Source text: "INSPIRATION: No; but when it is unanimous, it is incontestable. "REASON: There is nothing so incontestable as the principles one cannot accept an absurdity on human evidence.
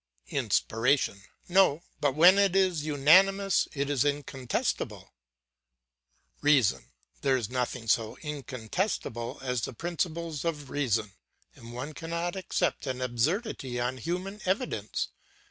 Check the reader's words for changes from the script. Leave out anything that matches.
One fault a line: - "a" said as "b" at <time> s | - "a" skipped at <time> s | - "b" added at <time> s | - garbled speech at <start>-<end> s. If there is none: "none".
- "of reason and" added at 10.4 s